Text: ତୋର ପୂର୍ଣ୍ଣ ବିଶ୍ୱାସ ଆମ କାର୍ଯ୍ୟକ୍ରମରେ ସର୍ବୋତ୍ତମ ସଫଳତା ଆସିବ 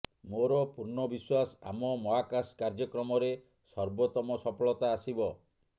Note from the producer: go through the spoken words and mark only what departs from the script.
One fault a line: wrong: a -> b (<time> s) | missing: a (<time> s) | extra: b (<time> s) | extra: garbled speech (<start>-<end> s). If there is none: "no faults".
wrong: ତୋର -> ମୋର (0.3 s)
extra: ମହାକାଶ (2.0 s)